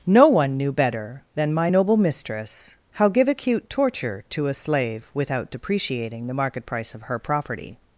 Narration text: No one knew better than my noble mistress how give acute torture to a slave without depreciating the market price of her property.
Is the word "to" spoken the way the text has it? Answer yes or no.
yes